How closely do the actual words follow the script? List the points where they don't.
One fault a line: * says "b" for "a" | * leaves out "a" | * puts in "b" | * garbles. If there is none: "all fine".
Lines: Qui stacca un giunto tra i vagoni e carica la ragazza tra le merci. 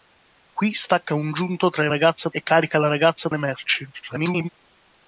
* says "ragazza" for "vagoni"
* leaves out "tra"
* garbles